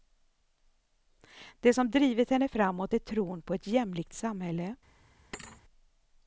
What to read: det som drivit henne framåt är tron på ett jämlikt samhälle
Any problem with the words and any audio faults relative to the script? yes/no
yes